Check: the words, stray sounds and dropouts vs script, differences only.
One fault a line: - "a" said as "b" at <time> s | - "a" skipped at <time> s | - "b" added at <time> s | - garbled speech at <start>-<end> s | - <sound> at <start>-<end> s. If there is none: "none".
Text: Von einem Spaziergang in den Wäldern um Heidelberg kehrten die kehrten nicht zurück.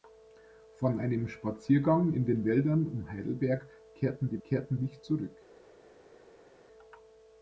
none